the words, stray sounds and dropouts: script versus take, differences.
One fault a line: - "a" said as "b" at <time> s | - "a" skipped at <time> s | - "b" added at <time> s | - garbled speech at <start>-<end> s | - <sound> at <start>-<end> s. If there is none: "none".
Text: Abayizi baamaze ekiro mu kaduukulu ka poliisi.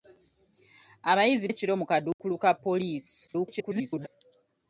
- "baamaze" skipped at 1.5 s
- dropout at 2.1-2.2 s
- garbled speech at 3.3-4.1 s